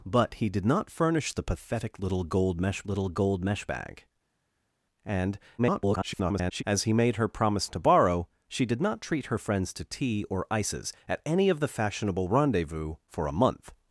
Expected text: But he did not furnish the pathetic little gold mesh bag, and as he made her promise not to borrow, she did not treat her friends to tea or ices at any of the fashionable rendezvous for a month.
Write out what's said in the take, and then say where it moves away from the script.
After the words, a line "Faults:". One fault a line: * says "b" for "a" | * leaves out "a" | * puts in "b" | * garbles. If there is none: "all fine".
But he did not furnish the pathetic little gold mesh little gold mesh bag, and [garbled] as he made her promise to borrow, she did not treat her friends to tea or ices at any of the fashionable rendezvous for a month.
Faults:
* puts in "little gold mesh"
* garbles
* leaves out "not"